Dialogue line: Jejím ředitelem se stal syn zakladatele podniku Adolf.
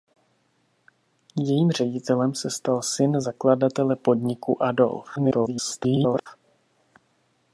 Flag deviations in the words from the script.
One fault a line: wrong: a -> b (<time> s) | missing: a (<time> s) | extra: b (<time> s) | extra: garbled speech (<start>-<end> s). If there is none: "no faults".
extra: garbled speech (5.2-6.3 s)